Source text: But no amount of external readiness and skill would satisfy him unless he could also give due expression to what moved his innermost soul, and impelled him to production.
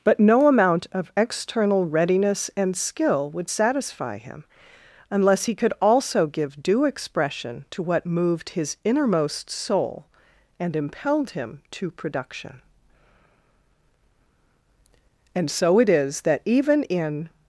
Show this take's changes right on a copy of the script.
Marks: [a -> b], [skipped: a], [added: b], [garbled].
But no amount of external readiness and skill would satisfy him unless he could also give due expression to what moved his innermost soul, and impelled him to production. [added: And so it is that even in]